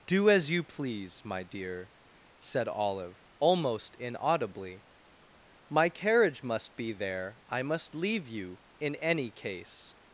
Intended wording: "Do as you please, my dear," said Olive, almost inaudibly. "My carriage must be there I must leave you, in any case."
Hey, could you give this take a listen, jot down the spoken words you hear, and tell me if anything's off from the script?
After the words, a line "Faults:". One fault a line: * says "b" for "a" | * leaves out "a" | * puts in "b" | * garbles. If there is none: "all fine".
"Do as you please, my dear," said Olive, almost inaudibly. "My carriage must be there I must leave you, in any case."
Faults:
all fine